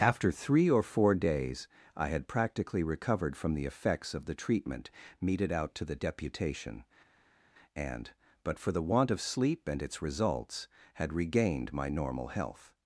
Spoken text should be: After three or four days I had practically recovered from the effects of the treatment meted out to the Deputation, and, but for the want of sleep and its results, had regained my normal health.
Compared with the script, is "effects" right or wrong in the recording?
right